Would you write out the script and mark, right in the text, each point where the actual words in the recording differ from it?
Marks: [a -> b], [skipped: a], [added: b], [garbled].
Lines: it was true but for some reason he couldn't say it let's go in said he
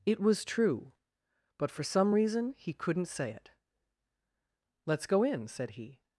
it was true but for some reason he couldn't say it let's go in said he